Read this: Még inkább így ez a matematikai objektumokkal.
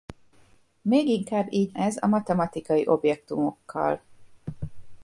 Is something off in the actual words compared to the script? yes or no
no